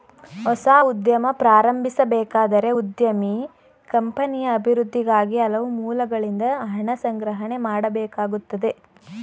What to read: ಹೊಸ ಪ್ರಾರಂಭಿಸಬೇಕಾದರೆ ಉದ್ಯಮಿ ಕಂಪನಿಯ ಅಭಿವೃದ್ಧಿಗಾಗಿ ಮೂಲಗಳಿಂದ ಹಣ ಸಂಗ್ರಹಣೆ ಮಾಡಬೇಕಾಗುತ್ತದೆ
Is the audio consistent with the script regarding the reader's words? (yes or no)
no